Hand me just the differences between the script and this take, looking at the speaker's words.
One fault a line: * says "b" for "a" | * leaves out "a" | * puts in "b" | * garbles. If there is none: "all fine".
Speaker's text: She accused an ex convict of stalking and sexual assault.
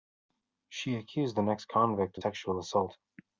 * leaves out "stalking and"